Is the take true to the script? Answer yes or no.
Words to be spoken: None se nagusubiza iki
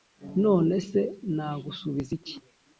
yes